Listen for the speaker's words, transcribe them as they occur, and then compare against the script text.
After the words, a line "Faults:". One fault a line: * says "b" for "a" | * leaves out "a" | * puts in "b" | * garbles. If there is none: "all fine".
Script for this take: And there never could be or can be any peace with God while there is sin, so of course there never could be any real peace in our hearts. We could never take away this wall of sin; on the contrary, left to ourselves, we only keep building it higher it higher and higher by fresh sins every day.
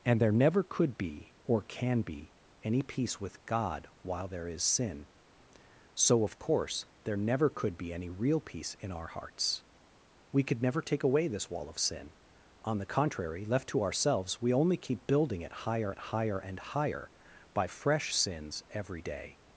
And there never could be or can be any peace with God while there is sin, so of course there never could be any real peace in our hearts. We could never take away this wall of sin; on the contrary, left to ourselves, we only keep building it higher it higher and higher by fresh sins every day.
Faults:
all fine